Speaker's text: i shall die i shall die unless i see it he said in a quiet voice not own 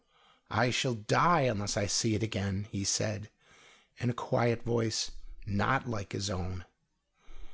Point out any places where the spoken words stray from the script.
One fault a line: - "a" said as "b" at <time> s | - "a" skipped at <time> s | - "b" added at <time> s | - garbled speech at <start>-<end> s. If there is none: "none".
- "i shall die" skipped at 1.4 s
- "again" added at 2.2 s
- "like his" added at 5.9 s